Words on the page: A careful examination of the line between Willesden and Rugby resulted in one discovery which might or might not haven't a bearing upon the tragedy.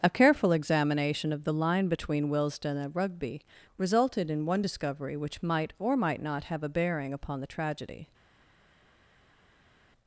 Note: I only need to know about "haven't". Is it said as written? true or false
false